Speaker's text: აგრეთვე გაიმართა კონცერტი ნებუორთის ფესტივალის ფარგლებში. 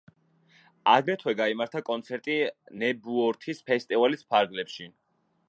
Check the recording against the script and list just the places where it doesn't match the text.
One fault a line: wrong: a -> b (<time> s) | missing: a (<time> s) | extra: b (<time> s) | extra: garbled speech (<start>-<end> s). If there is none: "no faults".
no faults